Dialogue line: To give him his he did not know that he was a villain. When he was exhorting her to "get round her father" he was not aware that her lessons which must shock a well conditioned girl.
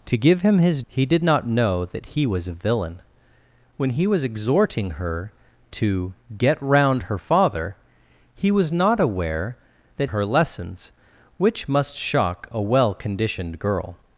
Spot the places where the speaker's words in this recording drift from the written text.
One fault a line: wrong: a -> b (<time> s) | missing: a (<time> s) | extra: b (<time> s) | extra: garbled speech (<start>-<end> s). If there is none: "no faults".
no faults